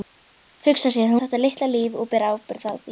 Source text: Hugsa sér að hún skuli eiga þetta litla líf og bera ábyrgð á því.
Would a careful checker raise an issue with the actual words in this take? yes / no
yes